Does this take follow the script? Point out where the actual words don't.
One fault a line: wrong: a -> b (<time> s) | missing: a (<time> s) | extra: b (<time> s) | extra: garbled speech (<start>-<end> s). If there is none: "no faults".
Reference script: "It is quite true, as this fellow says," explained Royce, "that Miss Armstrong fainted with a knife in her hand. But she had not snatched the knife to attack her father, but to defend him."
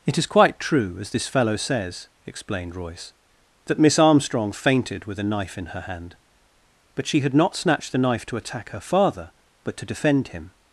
no faults